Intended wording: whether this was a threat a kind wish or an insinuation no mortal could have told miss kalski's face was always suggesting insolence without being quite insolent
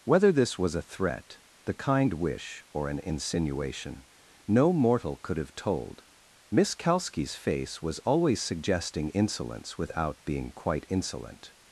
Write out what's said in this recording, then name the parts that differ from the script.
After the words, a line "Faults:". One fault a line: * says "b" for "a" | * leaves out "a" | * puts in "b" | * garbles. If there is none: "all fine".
whether this was a threat the kind wish or an insinuation no mortal could have told miss kalski's face was always suggesting insolence without being quite insolent
Faults:
* says "the" for "a"